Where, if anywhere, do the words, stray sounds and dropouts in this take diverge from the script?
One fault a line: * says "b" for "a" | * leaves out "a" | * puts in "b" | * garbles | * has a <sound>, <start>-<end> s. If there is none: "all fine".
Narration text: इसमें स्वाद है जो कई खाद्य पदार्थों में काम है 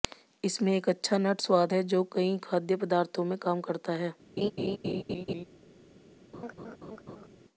* puts in "एक अच्छा नट"
* puts in "करता"
* has a laugh, 4.4-5.5 s
* has a laugh, 6.3-7.3 s